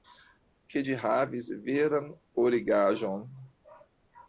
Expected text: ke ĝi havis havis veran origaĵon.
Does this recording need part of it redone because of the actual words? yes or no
yes